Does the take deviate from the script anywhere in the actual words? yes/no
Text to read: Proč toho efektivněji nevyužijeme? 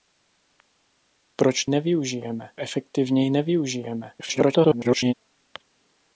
yes